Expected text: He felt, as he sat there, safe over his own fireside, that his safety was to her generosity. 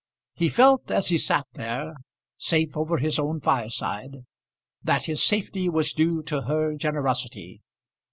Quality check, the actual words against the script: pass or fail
fail